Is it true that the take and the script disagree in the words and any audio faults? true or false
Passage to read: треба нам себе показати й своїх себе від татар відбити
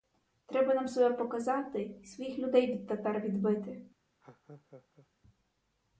true